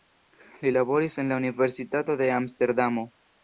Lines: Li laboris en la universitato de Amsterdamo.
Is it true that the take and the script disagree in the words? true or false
false